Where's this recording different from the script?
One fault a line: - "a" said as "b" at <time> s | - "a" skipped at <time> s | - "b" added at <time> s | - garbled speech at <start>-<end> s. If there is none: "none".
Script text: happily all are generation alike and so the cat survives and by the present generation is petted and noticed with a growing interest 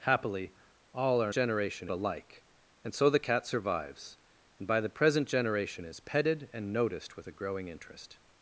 none